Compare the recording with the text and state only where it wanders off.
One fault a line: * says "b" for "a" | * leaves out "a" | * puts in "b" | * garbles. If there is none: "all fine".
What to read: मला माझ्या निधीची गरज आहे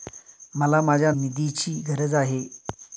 all fine